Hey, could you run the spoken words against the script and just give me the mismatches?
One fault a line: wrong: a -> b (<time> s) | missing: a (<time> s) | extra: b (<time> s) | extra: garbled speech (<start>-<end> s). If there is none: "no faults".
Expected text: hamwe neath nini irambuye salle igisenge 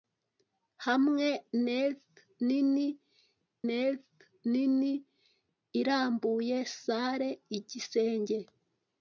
extra: neath nini (3.7 s)